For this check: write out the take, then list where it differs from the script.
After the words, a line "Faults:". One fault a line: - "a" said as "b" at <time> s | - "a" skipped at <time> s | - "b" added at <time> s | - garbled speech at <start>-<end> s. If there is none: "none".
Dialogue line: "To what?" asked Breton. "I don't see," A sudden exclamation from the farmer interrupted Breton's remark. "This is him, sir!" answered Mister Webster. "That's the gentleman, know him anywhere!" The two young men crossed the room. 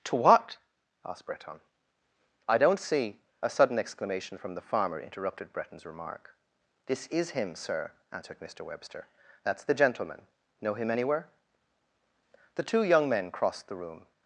"To what?" asked Breton. "I don't see," A sudden exclamation from the farmer interrupted Breton's remark. "This is him, sir!" answered Mister Webster. "That's the gentleman, know him anywhere!" The two young men crossed the room.
Faults:
none